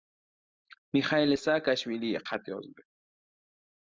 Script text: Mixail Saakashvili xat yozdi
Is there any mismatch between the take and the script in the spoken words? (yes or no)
no